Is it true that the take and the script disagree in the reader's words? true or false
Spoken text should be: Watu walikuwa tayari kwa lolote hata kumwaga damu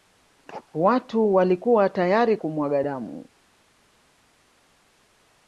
true